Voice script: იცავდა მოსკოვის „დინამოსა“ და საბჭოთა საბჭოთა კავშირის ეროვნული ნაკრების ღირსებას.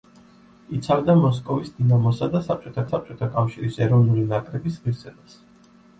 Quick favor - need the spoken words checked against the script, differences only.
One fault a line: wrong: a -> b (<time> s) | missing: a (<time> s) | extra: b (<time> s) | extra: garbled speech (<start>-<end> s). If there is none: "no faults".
no faults